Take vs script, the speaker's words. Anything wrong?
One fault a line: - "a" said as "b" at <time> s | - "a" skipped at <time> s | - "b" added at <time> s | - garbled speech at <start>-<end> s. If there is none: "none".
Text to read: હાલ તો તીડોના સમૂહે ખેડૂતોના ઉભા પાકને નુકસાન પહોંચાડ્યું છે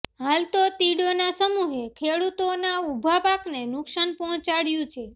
none